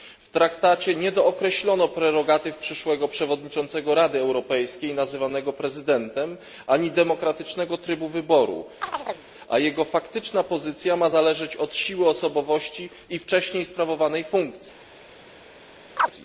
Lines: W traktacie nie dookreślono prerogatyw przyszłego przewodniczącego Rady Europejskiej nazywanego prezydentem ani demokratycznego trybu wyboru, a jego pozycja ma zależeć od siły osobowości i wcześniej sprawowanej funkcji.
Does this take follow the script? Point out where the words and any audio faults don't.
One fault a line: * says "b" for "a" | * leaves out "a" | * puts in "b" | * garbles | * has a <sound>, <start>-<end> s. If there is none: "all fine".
* has a chirp, 8.8-9.3 s
* puts in "faktyczna"
* has a chirp, 16.0-16.1 s